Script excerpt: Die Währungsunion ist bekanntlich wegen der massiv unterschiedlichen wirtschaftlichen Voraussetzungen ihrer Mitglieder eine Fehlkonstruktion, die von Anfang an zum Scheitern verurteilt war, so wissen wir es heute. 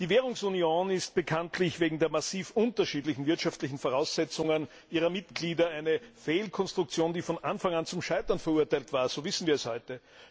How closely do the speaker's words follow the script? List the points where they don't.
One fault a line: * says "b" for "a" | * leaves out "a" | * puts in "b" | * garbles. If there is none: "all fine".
all fine